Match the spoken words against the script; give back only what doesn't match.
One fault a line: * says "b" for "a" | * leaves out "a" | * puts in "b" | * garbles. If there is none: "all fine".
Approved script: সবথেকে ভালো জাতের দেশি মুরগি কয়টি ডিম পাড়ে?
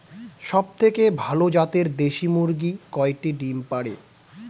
all fine